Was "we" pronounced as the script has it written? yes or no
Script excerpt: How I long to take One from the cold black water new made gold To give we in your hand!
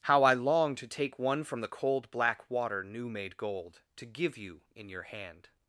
no